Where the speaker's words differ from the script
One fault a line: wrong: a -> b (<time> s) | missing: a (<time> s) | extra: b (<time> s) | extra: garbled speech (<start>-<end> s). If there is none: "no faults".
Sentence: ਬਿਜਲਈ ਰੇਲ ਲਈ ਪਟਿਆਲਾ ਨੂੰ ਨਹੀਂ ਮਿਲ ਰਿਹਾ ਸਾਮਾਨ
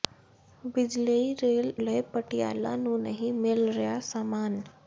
no faults